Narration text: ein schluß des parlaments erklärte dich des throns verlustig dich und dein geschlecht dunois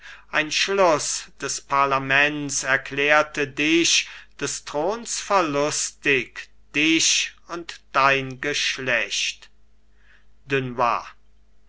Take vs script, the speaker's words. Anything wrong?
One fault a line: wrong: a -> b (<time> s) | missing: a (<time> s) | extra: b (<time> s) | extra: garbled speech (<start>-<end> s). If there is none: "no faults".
no faults